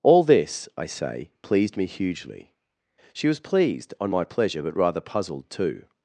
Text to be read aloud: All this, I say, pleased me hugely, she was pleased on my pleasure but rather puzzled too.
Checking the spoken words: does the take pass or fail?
pass